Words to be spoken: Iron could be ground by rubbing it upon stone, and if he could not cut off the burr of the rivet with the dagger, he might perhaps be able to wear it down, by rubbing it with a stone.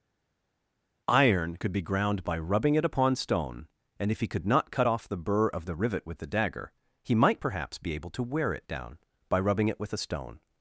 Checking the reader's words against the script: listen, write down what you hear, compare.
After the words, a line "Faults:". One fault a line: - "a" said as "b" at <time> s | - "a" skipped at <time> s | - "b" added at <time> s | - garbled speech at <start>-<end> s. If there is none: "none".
Iron could be ground by rubbing it upon stone, and if he could not cut off the burr of the rivet with the dagger, he might perhaps be able to wear it down, by rubbing it with a stone.
Faults:
none